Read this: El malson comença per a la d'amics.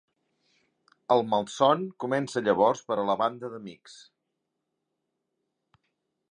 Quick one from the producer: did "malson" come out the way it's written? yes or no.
yes